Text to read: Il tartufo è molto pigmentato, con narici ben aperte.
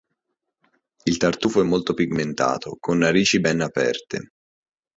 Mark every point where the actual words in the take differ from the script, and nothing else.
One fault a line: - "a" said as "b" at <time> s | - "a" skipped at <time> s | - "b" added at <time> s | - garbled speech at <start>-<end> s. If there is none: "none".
none